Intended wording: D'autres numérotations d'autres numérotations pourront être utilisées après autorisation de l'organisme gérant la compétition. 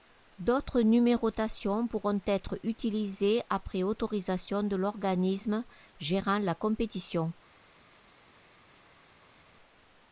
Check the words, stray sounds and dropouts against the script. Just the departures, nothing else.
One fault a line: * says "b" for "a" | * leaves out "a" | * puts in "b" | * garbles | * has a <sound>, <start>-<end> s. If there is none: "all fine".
* leaves out "d'autres numérotations"